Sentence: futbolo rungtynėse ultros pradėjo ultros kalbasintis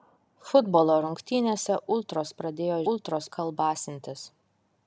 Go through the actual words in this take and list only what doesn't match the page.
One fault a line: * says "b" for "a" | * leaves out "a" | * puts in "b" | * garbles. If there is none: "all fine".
all fine